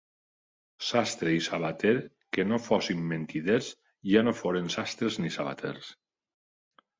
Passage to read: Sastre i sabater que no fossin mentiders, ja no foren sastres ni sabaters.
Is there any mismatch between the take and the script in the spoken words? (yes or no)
no